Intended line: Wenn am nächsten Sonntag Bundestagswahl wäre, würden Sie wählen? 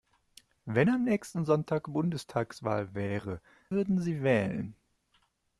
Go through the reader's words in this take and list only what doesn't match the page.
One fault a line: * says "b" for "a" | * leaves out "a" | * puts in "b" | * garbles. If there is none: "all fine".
all fine